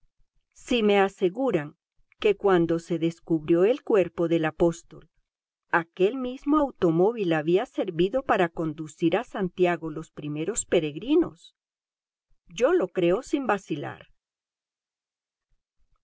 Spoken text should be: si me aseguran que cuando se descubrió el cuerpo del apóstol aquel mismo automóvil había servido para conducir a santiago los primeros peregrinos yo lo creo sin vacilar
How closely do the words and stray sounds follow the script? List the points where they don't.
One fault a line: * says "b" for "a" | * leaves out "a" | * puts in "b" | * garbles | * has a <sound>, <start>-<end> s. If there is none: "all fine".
all fine